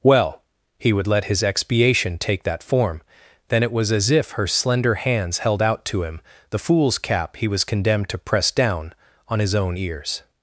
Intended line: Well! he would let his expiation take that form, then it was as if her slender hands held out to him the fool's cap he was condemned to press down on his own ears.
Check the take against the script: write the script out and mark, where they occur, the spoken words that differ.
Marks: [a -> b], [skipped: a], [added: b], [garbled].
Well! he would let his expiation take that form, then it was as if her slender hands held out to him the fool's cap he was condemned to press down on his own ears.